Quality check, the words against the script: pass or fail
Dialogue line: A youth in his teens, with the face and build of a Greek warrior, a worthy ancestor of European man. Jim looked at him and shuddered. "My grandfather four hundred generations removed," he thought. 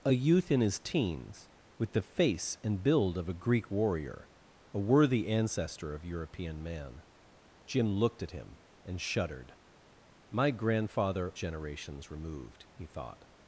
fail